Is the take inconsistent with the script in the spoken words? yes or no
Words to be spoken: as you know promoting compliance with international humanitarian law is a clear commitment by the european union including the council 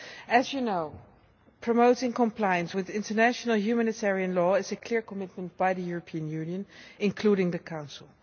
no